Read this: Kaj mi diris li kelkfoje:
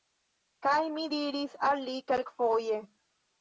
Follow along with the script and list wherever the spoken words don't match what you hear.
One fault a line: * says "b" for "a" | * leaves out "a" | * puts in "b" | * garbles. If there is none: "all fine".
* puts in "al"